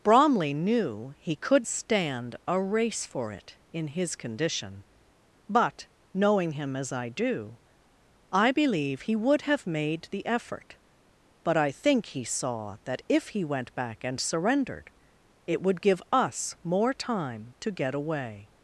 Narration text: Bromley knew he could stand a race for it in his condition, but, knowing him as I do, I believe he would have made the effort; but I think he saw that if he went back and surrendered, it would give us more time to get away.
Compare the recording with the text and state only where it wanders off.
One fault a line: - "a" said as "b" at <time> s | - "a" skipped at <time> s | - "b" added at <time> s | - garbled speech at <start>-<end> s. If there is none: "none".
none